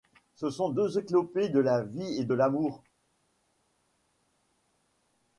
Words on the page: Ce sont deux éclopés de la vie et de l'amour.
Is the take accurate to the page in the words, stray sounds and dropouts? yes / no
yes